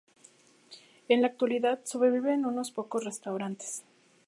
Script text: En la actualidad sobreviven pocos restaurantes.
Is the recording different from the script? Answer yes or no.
yes